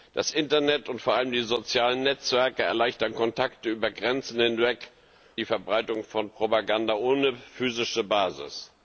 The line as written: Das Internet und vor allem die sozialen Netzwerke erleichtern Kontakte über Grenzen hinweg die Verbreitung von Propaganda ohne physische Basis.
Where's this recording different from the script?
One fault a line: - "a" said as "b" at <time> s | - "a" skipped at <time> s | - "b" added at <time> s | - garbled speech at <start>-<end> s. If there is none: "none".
none